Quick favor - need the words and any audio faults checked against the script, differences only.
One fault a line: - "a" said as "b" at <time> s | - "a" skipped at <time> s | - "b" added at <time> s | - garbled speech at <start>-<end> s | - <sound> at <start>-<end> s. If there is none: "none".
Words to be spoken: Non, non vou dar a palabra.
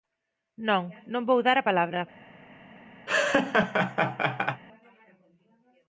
- laugh at 3.1-4.6 s